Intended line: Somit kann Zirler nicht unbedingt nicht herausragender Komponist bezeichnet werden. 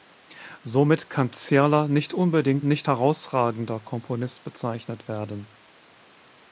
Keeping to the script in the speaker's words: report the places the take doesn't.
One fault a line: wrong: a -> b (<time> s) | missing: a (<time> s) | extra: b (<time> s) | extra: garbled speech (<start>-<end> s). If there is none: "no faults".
no faults